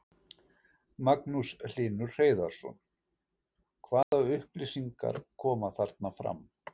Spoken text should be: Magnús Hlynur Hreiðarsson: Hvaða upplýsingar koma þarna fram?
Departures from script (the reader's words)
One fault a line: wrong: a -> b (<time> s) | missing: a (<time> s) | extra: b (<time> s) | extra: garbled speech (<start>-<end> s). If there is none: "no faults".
no faults